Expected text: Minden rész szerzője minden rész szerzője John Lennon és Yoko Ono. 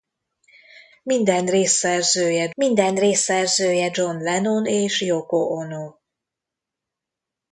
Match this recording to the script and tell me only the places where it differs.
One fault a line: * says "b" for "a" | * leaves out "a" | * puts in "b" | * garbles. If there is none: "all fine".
all fine